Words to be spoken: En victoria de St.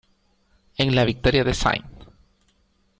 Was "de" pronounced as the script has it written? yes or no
yes